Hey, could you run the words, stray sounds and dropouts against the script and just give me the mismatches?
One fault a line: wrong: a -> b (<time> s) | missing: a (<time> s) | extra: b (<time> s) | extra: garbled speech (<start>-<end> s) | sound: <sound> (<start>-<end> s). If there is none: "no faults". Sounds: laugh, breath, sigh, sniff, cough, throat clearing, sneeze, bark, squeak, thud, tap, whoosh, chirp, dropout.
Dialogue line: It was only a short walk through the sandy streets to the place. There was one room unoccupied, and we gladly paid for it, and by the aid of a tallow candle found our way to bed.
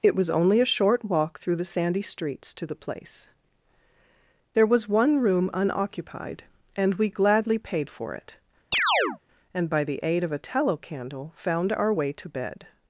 sound: chirp (8.7-9.2 s)